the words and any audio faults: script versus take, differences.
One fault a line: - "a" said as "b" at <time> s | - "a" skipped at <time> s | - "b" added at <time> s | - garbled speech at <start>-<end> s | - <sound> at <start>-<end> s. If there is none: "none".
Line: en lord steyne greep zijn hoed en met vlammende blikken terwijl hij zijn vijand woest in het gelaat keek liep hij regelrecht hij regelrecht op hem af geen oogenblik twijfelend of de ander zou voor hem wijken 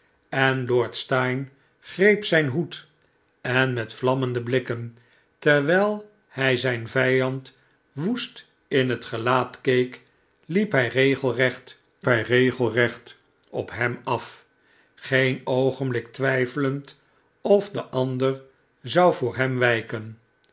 none